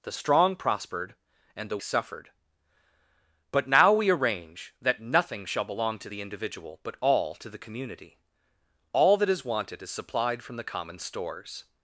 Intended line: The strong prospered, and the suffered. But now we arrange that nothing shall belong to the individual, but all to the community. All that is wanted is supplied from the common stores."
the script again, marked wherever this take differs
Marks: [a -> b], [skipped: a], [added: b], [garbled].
The strong prospered, and the suffered. But now we arrange that nothing shall belong to the individual, but all to the community. All that is wanted is supplied from the common stores."